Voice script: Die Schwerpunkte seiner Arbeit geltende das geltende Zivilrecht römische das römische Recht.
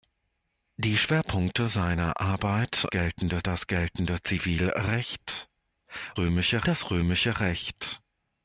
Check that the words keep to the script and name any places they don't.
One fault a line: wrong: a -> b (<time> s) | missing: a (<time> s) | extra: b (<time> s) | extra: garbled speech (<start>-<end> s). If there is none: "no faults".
no faults